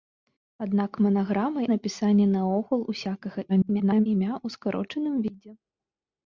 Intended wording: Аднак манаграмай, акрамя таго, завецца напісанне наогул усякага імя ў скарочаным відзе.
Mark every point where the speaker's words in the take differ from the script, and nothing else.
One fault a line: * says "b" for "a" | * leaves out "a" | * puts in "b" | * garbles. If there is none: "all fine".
* leaves out "акрамя таго завецца"
* garbles